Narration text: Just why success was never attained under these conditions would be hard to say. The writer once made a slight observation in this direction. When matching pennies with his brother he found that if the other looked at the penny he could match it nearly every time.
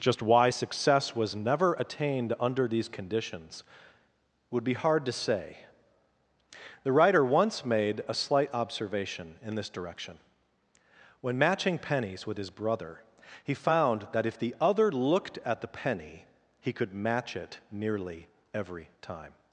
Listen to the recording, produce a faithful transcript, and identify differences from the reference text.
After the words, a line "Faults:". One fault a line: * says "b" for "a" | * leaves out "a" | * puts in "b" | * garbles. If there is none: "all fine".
Just why success was never attained under these conditions would be hard to say. The writer once made a slight observation in this direction. When matching pennies with his brother he found that if the other looked at the penny he could match it nearly every time.
Faults:
all fine